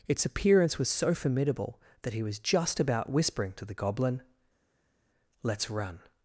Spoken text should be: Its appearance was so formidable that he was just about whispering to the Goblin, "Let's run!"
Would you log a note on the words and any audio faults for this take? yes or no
no